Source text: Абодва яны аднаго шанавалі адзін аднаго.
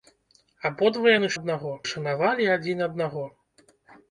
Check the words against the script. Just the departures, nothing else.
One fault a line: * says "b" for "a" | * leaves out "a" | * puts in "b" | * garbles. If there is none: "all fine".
all fine